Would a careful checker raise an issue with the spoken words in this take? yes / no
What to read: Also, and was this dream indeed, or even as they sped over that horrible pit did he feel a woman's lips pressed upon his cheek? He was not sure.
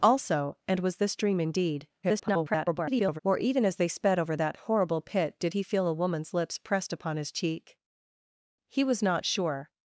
yes